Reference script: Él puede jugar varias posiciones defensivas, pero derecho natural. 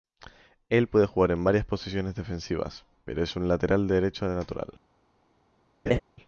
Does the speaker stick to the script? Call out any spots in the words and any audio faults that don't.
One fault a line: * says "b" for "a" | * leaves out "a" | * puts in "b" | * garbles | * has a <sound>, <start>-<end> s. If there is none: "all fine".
* puts in "en"
* puts in "es un lateral"
* has a laugh, 5.9-6.0 s